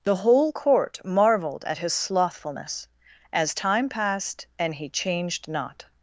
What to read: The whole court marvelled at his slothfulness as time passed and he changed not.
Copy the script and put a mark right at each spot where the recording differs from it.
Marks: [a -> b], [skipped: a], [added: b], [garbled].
The whole court marvelled at his slothfulness as time passed and he changed not.